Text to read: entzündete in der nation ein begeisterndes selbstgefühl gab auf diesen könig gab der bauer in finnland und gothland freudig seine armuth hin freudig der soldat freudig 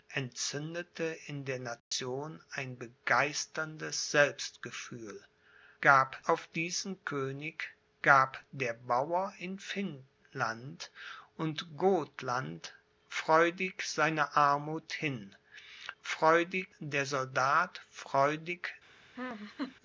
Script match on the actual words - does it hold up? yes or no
yes